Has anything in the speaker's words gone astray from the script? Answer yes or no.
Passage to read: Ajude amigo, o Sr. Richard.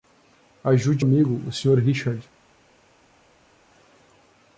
no